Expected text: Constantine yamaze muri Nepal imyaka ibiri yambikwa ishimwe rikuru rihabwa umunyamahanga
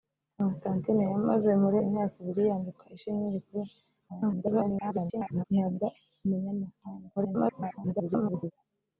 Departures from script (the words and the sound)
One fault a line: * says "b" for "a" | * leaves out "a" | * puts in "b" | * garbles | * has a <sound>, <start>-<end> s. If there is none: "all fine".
* leaves out "Nepal"
* garbles
* garbles